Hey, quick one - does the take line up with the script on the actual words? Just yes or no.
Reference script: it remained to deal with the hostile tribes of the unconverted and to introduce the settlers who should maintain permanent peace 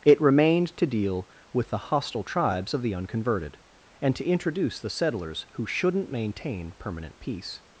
no